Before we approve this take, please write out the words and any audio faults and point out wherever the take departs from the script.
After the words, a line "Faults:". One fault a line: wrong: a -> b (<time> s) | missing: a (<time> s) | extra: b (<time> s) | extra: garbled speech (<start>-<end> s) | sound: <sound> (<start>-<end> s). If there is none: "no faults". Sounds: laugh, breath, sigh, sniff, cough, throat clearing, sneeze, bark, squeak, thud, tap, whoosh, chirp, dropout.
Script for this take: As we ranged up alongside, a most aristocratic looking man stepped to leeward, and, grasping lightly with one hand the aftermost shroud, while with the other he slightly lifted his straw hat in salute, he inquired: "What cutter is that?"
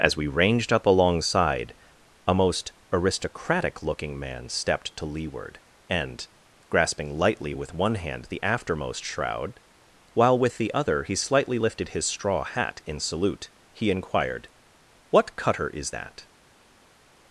As we ranged up alongside, a most aristocratic looking man stepped to leeward, and, grasping lightly with one hand the aftermost shroud, while with the other he slightly lifted his straw hat in salute, he inquired: "What cutter is that?"
Faults:
no faults